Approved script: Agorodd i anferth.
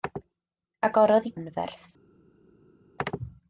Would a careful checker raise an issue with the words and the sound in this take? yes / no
no